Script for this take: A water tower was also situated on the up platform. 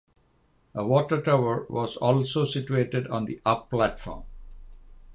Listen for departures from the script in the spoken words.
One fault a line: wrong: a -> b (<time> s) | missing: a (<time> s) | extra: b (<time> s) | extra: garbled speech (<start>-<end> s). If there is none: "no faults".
no faults